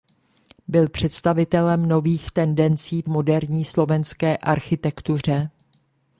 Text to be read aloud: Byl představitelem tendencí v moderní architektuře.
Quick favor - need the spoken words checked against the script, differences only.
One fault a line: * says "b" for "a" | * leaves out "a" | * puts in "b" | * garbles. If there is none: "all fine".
* puts in "nových"
* puts in "slovenské"